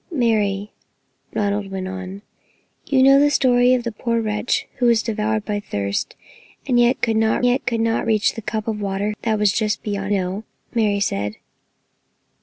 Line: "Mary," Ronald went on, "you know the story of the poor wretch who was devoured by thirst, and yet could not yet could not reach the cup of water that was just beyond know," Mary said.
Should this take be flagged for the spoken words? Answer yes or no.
no